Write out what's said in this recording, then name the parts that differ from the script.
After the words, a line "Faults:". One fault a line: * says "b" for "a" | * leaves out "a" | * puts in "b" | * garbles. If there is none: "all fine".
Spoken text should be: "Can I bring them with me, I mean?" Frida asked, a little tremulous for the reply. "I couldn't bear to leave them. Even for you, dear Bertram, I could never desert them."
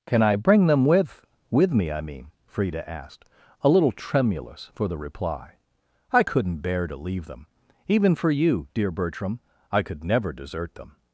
"Can I bring them with with me, I mean?" Frida asked, a little tremulous for the reply. "I couldn't bear to leave them. Even for you, dear Bertram, I could never desert them."
Faults:
* puts in "with"